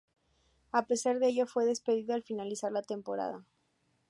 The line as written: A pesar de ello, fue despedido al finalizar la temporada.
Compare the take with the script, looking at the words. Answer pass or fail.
pass